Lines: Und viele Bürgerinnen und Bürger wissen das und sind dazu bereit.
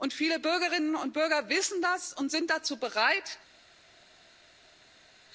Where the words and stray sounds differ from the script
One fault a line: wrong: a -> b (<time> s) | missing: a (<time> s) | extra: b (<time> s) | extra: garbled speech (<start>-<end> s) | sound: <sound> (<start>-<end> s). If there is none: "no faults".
no faults